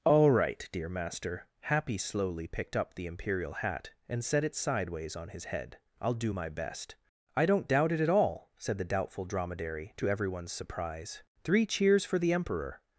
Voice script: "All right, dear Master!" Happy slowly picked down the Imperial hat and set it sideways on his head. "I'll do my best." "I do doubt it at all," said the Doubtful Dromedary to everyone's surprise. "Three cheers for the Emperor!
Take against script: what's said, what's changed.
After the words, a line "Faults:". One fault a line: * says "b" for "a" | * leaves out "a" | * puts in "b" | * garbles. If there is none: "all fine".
"All right, dear Master!" Happy slowly picked up the Imperial hat and set it sideways on his head. "I'll do my best." "I don't doubt it at all," said the Doubtful Dromedary to everyone's surprise. "Three cheers for the Emperor!
Faults:
* says "up" for "down"
* says "don't" for "do"